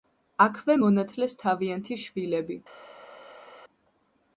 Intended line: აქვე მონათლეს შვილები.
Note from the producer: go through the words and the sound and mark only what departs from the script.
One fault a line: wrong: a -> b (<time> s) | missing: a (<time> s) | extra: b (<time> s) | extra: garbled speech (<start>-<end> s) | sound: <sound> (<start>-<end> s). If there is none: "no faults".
extra: თავიანთი (1.4 s)